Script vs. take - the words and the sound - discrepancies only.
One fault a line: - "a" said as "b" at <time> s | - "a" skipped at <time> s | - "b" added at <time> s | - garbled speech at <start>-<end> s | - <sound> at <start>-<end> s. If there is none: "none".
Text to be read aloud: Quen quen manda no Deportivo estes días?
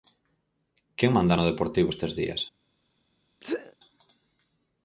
- "quen" skipped at 1.1 s
- sneeze at 3.4-3.8 s